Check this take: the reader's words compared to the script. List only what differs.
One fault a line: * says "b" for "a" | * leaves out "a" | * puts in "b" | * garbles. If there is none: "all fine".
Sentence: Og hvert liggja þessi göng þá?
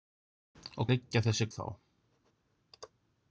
* leaves out "hvert"
* leaves out "göng"